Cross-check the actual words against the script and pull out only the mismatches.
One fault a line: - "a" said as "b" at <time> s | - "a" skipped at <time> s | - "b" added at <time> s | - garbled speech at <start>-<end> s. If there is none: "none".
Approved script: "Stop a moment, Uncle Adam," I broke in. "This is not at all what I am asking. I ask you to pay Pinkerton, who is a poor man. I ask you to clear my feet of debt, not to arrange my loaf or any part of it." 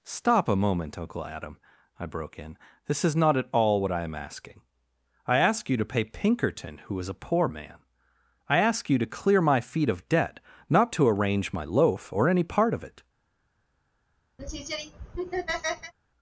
none